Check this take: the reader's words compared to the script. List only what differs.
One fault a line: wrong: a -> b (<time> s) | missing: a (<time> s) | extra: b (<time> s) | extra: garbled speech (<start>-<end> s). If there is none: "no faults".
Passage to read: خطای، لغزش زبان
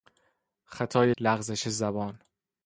no faults